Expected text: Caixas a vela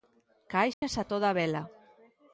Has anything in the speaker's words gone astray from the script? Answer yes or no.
yes